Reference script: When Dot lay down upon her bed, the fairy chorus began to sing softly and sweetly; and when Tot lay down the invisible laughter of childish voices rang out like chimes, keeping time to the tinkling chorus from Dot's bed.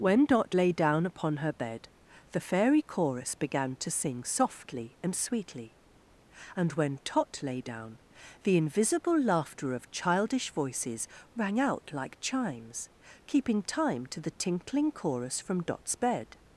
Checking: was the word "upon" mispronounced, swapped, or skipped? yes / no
no